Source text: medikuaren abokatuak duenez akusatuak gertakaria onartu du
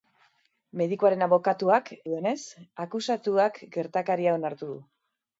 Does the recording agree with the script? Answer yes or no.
yes